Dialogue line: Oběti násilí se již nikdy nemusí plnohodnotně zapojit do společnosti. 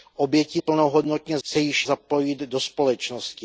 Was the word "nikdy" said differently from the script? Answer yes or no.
yes